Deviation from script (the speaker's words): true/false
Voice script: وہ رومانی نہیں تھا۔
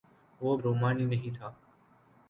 false